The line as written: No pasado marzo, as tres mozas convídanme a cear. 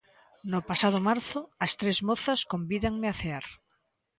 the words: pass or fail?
pass